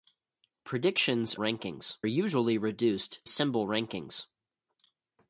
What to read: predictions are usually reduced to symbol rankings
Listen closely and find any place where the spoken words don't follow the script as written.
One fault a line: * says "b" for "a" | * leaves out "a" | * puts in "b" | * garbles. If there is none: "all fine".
* says "rankings" for "are"
* leaves out "to"